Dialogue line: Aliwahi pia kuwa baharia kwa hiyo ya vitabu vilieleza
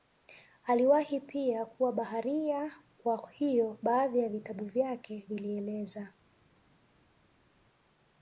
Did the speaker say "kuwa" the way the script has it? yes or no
yes